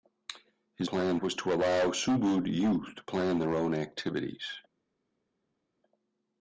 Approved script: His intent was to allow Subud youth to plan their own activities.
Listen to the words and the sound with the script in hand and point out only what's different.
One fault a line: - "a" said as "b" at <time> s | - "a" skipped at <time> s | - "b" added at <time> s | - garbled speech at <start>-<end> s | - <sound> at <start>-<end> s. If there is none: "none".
- "intent" said as "plan" at 0.8 s